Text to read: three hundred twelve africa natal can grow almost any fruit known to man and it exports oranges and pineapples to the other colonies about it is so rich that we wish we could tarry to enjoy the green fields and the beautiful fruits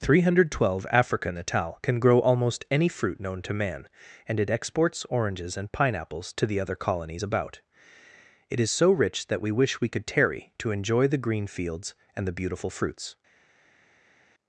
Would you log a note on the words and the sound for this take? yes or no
no